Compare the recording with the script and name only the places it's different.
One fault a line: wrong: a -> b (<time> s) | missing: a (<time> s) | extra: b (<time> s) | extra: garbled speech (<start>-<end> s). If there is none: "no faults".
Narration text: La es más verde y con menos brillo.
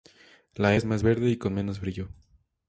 no faults